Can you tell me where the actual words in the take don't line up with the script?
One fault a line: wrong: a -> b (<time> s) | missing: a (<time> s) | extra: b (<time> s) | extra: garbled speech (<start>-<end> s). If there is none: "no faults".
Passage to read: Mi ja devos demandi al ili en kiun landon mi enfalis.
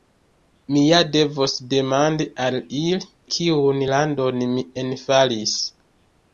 missing: en (3.1 s)